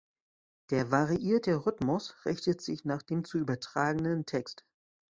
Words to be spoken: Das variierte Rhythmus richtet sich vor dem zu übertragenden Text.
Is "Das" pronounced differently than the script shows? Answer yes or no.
yes